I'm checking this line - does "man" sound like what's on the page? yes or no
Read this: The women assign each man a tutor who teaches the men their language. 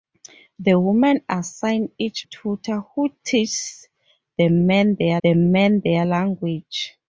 no